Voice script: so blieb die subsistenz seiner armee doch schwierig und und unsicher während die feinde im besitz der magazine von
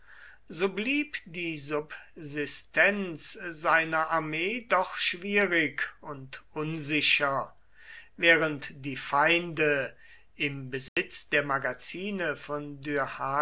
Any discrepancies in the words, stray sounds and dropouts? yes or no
yes